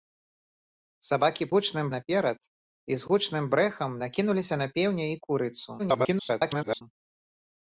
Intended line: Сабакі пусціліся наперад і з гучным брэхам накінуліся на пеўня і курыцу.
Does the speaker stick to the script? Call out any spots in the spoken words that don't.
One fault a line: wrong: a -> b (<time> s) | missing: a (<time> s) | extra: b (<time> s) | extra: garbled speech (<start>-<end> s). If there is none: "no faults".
wrong: пусціліся -> гучным (1.5 s)
extra: garbled speech (5.8-6.8 s)